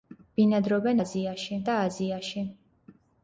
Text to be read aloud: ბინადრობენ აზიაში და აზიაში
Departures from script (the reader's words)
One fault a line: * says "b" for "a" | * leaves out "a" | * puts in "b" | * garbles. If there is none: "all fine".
all fine